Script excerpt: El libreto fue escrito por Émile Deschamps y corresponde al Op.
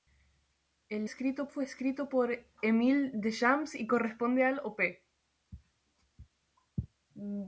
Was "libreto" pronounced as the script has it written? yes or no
no